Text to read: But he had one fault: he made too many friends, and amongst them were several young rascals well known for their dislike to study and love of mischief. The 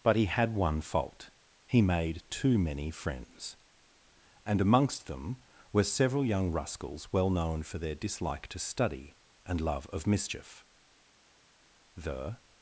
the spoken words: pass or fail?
pass